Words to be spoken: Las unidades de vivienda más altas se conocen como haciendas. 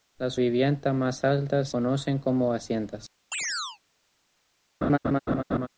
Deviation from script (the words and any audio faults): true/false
true